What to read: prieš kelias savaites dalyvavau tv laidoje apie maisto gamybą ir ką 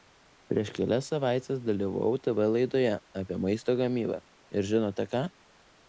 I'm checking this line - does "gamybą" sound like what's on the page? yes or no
yes